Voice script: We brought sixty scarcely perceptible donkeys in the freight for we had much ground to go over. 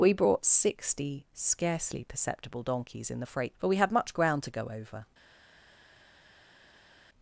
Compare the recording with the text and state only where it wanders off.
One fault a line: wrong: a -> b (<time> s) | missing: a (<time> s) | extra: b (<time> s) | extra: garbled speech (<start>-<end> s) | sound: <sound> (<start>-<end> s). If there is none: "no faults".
no faults